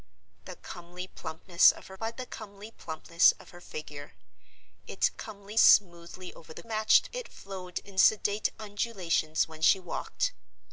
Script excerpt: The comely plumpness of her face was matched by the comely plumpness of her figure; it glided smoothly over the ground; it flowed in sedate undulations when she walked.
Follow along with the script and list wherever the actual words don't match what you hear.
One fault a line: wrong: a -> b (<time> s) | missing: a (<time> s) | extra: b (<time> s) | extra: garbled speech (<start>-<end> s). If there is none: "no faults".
missing: face was matched (1.9 s)
wrong: glided -> comely (5.1 s)
wrong: ground -> matched (6.6 s)